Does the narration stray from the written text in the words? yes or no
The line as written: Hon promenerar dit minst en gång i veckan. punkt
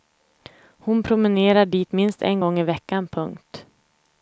no